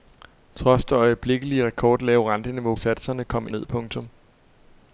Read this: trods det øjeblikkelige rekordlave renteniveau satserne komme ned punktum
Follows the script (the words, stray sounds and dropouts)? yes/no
yes